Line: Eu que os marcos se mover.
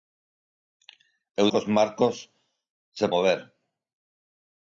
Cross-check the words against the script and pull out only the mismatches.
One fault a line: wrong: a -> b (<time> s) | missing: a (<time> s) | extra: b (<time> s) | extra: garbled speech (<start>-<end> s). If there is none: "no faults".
no faults